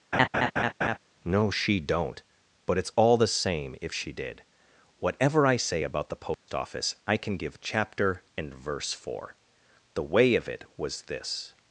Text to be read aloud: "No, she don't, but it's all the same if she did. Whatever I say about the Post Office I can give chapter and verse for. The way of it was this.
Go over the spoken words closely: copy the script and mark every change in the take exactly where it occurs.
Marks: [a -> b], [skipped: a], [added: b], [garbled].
"No, she don't, but it's all the same if she did. Whatever I say about the Post Office I can give chapter and verse for. The way of it was this.